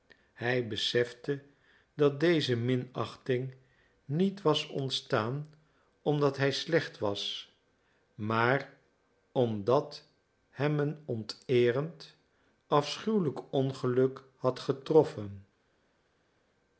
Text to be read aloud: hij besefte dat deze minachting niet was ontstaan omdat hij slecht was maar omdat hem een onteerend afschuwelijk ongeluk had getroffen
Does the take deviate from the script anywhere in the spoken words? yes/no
no